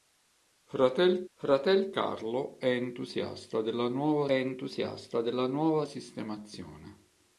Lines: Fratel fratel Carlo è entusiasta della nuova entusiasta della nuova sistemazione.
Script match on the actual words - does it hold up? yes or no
yes